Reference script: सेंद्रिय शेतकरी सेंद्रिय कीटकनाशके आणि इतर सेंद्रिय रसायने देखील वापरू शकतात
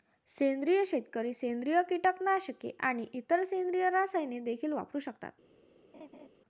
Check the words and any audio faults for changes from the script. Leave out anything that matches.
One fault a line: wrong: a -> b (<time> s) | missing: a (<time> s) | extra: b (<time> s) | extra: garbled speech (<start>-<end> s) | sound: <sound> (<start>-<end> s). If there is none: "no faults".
sound: laugh (5.9-6.3 s)